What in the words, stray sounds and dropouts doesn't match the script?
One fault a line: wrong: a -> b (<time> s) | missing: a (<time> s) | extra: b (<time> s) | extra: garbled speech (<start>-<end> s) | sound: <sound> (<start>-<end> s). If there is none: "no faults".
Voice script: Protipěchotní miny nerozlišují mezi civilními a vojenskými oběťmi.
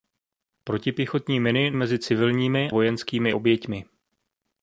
missing: nerozlišují (1.7 s)
missing: a (2.7 s)